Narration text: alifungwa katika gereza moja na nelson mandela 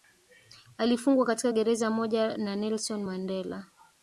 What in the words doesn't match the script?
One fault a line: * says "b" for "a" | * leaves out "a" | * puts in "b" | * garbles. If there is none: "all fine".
all fine